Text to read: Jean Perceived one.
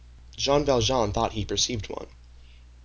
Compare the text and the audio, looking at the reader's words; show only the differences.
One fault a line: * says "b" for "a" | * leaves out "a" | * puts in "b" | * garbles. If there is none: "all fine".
* puts in "Valjean thought he"